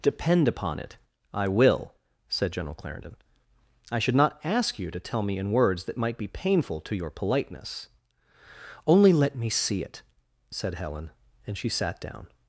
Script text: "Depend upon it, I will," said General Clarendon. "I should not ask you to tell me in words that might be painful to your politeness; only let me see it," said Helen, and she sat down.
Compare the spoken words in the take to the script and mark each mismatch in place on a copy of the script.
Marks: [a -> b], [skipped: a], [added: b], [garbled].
"Depend upon it, I will," said General Clarendon. "I should not ask you to tell me in words that might be painful to your politeness; only let me see it," said Helen, and she sat down.